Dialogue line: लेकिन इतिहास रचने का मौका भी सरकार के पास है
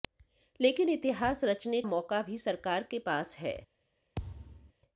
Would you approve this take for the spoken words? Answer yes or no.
no